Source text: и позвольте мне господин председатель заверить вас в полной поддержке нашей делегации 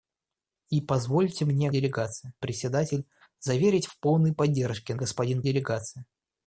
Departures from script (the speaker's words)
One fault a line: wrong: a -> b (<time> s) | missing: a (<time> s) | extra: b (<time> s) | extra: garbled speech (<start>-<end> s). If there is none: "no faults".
wrong: господин -> делегации (1.7 s)
missing: вас (3.9 s)
wrong: нашей -> господин (4.9 s)